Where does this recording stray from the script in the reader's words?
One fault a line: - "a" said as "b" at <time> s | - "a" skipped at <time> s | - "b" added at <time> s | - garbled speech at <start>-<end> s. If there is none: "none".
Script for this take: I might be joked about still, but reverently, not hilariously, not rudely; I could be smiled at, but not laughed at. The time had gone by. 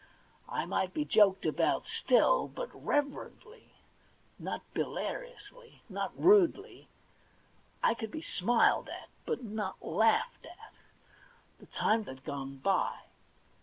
none